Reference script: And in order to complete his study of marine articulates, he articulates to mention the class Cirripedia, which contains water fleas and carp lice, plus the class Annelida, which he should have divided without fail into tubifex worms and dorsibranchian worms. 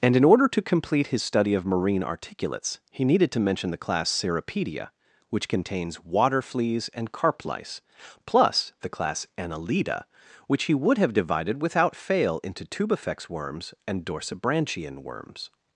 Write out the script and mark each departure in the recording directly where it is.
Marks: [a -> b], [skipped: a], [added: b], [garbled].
And in order to complete his study of marine articulates, he [articulates -> needed] to mention the class Cirripedia, which contains water fleas and carp lice, plus the class Annelida, which he [should -> would] have divided without fail into tubifex worms and dorsibranchian worms.